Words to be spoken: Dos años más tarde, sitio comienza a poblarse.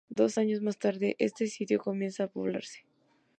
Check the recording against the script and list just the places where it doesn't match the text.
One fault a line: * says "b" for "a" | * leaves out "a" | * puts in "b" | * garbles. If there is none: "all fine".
* puts in "este"